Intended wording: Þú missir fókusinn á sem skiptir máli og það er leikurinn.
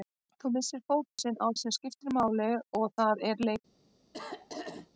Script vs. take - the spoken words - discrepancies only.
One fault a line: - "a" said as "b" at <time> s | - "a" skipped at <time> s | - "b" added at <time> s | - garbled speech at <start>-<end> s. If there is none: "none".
none